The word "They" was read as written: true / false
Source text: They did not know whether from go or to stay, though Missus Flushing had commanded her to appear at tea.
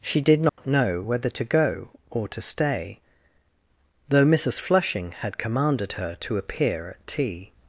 false